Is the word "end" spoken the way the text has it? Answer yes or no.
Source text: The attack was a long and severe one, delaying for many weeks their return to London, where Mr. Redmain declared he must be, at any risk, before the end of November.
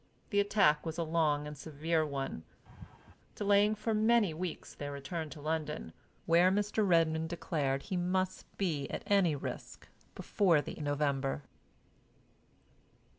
no